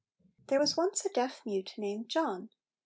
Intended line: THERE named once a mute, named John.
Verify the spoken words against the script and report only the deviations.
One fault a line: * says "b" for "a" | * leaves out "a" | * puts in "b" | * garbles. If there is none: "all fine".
* says "was" for "named"
* puts in "deaf"